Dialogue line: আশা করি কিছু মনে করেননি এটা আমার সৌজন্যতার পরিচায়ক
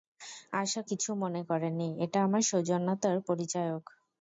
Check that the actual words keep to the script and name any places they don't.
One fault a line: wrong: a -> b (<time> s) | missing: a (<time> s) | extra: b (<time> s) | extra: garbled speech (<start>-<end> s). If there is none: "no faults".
missing: করি (0.8 s)